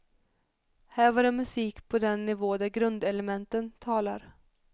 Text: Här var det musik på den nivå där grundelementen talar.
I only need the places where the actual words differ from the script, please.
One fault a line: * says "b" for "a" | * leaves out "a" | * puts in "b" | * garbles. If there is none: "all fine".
all fine